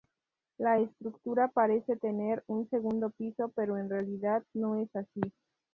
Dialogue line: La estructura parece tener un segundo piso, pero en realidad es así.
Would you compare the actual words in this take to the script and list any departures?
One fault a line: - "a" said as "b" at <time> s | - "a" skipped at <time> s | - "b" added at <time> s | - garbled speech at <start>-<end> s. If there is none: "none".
- "no" added at 4.5 s